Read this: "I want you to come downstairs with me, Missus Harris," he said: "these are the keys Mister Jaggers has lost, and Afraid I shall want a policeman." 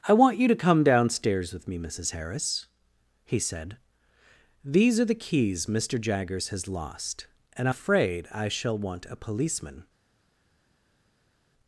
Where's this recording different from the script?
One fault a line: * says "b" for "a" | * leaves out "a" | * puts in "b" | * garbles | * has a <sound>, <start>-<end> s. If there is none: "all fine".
all fine